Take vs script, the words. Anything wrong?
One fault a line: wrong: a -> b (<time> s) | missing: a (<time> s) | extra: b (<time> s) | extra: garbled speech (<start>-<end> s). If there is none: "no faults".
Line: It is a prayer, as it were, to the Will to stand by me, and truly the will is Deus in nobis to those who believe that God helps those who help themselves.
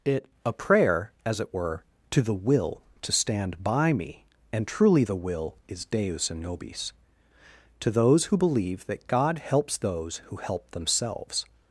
missing: is (0.2 s)